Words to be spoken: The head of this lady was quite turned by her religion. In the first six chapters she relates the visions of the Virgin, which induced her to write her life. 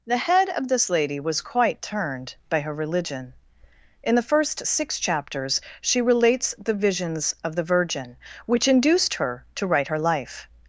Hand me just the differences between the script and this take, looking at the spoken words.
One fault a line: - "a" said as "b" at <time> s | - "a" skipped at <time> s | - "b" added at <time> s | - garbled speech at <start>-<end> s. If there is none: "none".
none